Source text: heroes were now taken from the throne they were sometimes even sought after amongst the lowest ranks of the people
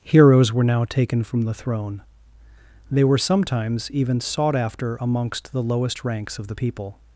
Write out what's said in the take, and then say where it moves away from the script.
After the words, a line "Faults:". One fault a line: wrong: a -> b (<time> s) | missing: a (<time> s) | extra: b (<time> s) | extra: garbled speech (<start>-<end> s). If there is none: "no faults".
heroes were now taken from the throne they were sometimes even sought after amongst the lowest ranks of the people
Faults:
no faults